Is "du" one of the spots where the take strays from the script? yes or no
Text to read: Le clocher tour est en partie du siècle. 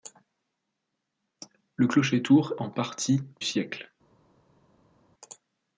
yes